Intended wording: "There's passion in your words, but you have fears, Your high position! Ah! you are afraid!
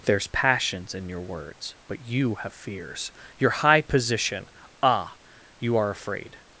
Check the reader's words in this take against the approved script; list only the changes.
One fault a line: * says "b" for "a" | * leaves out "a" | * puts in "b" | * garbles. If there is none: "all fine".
* says "passions" for "passion"